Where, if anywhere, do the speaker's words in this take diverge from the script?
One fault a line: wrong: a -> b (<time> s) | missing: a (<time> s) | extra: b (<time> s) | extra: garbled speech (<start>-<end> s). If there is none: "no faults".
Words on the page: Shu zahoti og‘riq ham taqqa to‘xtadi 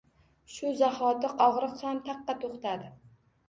no faults